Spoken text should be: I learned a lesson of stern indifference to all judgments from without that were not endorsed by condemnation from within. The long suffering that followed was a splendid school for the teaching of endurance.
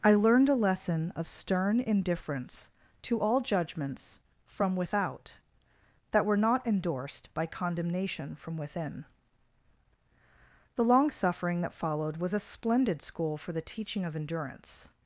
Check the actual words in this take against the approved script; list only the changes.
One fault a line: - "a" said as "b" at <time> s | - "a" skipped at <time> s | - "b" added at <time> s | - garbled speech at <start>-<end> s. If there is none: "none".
none